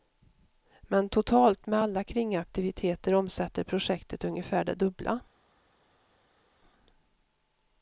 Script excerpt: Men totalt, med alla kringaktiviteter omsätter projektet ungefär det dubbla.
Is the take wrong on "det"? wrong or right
right